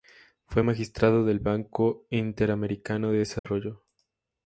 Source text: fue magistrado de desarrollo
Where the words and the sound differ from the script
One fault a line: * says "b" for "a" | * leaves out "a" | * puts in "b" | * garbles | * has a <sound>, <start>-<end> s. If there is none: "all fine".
* puts in "del banco interamericano"
* has a dropout, 3.4-3.4 s